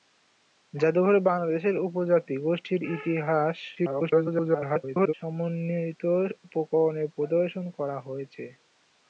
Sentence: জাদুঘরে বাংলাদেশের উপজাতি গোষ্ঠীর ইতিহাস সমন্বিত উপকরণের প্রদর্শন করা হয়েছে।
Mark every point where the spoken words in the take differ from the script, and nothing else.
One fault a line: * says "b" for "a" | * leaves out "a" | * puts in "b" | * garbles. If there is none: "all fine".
* garbles